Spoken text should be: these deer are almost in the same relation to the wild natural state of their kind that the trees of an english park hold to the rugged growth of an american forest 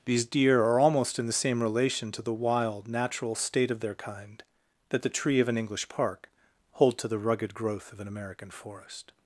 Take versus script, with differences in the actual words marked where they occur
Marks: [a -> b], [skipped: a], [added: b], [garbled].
these deer are almost in the same relation to the wild natural state of their kind that the [trees -> tree] of an english park hold to the rugged growth of an american forest